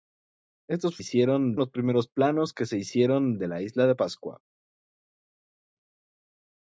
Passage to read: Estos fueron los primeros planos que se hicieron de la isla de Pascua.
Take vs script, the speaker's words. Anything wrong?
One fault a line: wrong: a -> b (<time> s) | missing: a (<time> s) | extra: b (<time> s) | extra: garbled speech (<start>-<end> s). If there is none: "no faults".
wrong: fueron -> hicieron (1.0 s)